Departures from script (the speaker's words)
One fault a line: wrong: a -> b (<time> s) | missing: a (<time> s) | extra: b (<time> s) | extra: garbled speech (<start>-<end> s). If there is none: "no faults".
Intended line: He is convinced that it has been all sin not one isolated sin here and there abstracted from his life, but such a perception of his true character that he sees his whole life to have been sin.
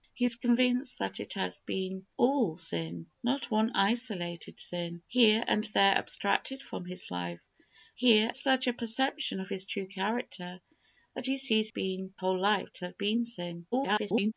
wrong: but -> here (8.0 s)
wrong: his -> been (11.7 s)
extra: garbled speech (13.7-14.3 s)